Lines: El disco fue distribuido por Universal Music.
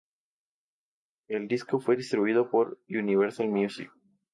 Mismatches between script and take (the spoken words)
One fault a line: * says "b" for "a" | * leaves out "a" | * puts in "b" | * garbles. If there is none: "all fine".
all fine